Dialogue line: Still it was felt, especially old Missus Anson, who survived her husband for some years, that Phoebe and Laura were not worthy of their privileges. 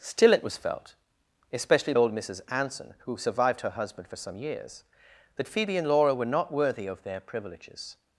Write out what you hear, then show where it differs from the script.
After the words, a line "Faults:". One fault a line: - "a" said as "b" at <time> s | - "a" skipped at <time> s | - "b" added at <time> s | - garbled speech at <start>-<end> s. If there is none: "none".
Still it was felt, especially old Missus Anson, who survived her husband for some years, that Phoebe and Laura were not worthy of their privileges.
Faults:
none